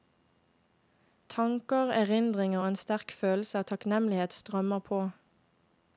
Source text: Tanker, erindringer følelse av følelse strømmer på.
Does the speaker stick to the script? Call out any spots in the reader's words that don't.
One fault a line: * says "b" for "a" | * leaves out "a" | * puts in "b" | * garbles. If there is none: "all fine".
* puts in "og en sterk"
* says "takknemlighet" for "følelse"